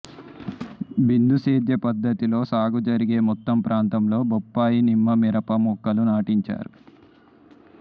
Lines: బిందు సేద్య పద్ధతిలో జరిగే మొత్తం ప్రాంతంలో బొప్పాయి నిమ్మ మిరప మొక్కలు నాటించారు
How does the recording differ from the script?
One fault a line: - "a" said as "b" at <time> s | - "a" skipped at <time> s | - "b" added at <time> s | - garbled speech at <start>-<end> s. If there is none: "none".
- "సాగు" added at 2.4 s